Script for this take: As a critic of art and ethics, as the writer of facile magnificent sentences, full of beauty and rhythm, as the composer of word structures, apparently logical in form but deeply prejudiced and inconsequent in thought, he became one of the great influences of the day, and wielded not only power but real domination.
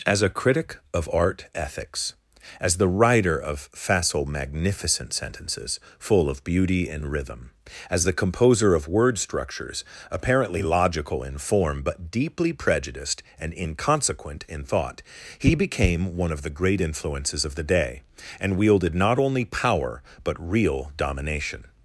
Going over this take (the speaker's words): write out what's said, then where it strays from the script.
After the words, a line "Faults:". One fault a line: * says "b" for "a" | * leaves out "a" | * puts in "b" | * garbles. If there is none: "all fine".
As a critic of art ethics, as the writer of facile magnificent sentences, full of beauty and rhythm, as the composer of word structures, apparently logical in form but deeply prejudiced and inconsequent in thought, he became one of the great influences of the day, and wielded not only power but real domination.
Faults:
* leaves out "and"